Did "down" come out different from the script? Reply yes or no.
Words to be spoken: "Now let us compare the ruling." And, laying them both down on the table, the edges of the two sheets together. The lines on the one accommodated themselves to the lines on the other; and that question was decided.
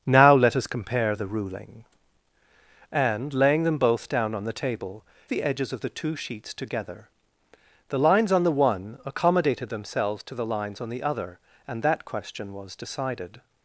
no